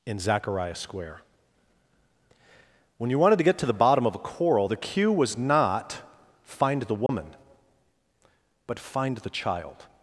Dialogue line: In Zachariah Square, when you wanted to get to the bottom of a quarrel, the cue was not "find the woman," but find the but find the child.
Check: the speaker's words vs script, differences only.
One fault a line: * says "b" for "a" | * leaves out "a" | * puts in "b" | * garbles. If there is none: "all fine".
* leaves out "but find the"